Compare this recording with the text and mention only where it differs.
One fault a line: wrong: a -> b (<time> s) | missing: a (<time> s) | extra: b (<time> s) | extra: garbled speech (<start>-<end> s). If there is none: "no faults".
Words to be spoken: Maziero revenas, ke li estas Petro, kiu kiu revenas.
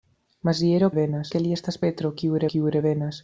no faults